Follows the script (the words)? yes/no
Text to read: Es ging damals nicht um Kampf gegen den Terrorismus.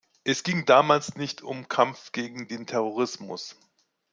yes